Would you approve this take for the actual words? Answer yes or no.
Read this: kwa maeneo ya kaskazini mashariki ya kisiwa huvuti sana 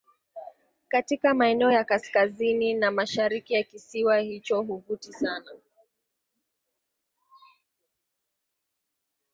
no